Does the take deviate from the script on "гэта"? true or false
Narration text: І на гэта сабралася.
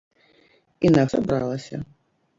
true